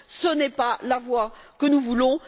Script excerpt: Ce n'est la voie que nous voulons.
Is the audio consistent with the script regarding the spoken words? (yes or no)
no